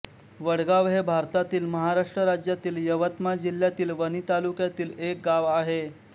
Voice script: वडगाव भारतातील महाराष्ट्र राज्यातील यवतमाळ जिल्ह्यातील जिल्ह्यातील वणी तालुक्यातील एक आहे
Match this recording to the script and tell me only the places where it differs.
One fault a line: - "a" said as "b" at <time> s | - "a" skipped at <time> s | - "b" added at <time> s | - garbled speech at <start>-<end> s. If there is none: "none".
- "हे" added at 0.9 s
- "जिल्ह्यातील" skipped at 3.9 s
- "गाव" added at 5.2 s